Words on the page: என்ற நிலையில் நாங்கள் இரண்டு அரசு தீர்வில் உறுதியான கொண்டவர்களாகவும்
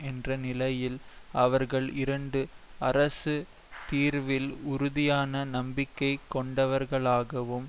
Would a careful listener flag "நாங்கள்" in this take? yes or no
yes